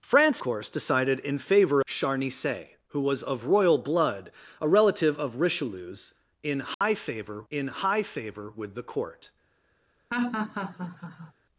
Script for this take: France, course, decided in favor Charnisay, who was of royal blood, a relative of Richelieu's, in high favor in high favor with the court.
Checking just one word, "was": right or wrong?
right